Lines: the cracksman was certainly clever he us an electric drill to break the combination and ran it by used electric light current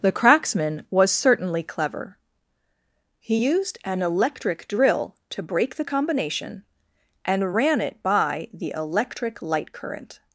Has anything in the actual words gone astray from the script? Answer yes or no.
yes